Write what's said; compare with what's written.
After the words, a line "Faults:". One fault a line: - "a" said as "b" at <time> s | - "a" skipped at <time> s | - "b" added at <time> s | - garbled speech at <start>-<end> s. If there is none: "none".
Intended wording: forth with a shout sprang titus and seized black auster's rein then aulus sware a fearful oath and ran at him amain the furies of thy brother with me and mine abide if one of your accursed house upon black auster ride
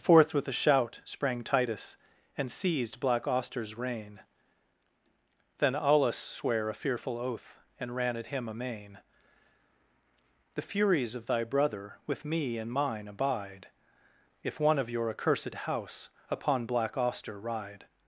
forth with a shout sprang titus and seized black auster's rein then aulus sware a fearful oath and ran at him amain the furies of thy brother with me and mine abide if one of your accursed house upon black auster ride
Faults:
none